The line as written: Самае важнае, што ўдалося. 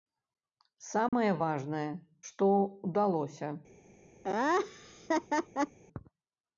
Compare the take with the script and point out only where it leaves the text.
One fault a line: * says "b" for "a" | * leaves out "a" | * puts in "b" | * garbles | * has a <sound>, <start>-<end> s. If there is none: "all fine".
* has a dropout, 1.1-1.1 s
* has a laugh, 4.2-5.8 s